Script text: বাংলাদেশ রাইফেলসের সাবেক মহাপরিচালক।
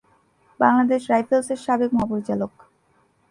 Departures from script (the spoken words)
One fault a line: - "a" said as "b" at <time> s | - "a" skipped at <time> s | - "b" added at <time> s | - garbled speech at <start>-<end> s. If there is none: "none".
none